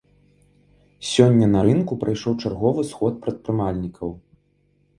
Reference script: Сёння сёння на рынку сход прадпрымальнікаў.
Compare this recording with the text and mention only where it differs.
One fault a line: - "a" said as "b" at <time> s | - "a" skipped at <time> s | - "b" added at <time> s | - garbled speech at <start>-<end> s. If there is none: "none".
- "сёння" skipped at 1.5 s
- "прайшоў чарговы" added at 2.1 s